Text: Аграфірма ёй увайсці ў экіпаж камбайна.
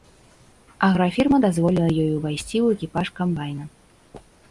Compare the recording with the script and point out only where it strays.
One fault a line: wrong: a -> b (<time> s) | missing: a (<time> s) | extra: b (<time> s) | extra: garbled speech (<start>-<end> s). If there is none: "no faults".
extra: дазволіла (1.4 s)